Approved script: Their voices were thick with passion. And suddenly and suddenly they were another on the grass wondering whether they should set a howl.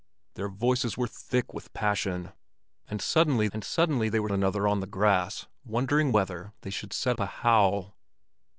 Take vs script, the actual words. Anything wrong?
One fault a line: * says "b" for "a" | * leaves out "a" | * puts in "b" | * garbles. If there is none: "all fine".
all fine